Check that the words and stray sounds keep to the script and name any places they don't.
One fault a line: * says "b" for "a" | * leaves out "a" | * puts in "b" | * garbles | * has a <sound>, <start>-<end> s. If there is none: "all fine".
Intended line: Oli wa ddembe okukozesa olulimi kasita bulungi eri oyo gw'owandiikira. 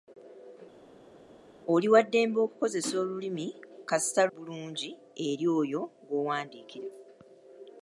all fine